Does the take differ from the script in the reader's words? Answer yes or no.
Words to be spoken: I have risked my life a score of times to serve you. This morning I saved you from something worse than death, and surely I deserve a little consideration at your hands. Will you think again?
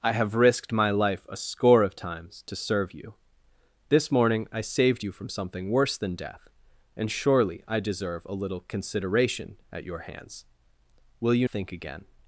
no